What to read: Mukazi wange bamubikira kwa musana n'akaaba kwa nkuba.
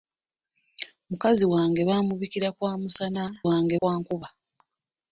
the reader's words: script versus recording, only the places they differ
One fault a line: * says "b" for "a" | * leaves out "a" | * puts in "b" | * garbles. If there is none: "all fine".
* says "wange" for "n'akaaba"